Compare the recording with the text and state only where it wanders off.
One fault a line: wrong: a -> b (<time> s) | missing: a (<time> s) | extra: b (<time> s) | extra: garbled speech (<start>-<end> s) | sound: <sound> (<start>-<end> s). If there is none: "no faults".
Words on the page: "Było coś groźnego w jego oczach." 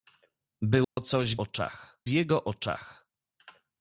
sound: dropout (0.8-1.0 s)
wrong: groźnego -> oczach (1.4 s)